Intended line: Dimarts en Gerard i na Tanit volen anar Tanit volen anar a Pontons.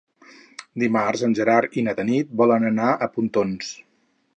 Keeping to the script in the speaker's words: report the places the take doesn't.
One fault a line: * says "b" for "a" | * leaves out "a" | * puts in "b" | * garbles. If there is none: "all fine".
* leaves out "Tanit volen anar"